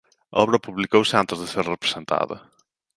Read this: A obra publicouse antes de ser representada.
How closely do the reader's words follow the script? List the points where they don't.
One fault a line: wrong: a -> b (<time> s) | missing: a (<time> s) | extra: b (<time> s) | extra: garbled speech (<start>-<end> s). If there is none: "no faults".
no faults